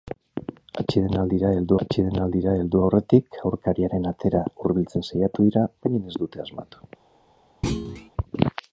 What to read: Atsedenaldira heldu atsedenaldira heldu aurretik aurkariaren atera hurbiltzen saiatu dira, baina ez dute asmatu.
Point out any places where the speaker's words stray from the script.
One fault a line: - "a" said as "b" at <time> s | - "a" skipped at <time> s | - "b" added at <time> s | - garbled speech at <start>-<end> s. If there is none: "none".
none